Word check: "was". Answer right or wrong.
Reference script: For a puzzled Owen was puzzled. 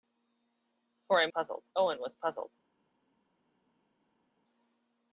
right